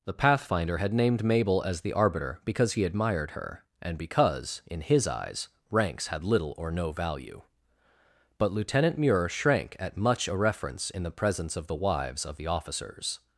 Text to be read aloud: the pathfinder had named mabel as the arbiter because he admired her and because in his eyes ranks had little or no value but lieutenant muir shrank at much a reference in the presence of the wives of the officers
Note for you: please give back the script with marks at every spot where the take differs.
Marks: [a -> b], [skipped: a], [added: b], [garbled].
the pathfinder had named mabel as the arbiter because he admired her and because in his eyes ranks had little or no value but lieutenant muir shrank at much a reference in the presence of the wives of the officers